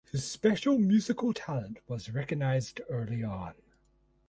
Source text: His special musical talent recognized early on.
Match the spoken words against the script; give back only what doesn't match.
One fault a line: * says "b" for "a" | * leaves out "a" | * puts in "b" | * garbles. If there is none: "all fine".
* puts in "was"